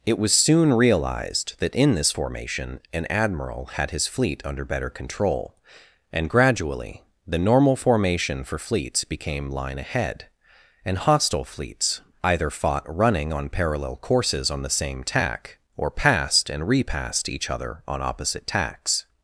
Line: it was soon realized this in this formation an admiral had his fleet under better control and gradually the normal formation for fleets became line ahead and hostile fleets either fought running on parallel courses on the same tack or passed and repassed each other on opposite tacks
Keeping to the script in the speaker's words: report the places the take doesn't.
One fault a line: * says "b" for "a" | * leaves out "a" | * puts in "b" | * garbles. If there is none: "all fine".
* says "that" for "this"